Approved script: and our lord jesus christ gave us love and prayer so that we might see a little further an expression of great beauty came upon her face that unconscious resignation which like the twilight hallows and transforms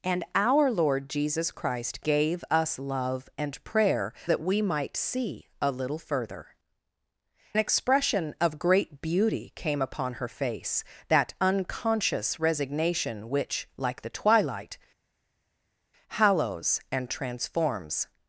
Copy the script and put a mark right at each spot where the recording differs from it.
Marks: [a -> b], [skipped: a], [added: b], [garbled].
and our lord jesus christ gave us love and prayer [skipped: so] that we might see a little further [skipped: an] expression of great beauty came upon her face that unconscious resignation which like the twilight hallows and transforms